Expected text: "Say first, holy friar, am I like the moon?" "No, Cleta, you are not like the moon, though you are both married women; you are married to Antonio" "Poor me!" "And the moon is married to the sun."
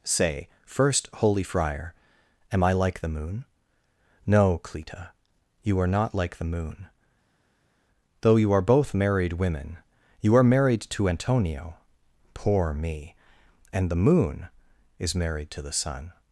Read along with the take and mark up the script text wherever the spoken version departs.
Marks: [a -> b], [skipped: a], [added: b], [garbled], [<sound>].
"Say first, holy friar, am I like the moon?" "No, Cleta, you are not like the moon, though you are both married women; you are married to Antonio" "Poor me!" "And the moon is married to the sun."